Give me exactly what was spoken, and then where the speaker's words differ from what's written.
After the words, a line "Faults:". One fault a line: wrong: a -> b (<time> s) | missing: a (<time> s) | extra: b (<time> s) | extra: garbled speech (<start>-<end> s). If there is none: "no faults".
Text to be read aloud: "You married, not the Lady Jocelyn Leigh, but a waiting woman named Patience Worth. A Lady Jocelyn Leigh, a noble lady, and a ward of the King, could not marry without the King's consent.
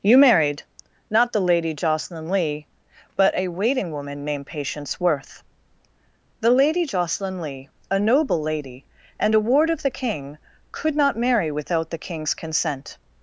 "You married, not the Lady Jocelyn Leigh, but a waiting woman named Patience Worth. The Lady Jocelyn Leigh, a noble lady, and a ward of the King, could not marry without the King's consent.
Faults:
wrong: A -> The (6.4 s)